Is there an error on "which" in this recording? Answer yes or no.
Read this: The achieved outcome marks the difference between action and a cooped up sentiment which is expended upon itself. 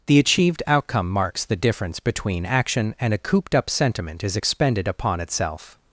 yes